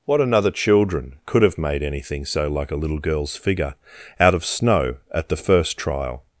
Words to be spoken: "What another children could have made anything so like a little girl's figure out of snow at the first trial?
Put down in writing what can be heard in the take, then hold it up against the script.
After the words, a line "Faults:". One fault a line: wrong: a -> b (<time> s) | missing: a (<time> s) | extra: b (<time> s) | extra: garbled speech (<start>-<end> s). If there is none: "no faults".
"What another children could have made anything so like a little girl's figure out of snow at the first trial?
Faults:
no faults